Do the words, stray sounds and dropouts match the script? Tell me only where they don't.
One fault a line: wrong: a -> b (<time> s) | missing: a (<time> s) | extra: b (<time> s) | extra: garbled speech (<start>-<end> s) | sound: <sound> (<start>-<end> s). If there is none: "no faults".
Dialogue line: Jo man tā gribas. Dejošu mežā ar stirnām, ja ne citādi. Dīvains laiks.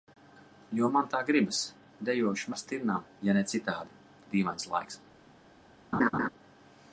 missing: mežā (2.5 s)
sound: laugh (5.9-6.3 s)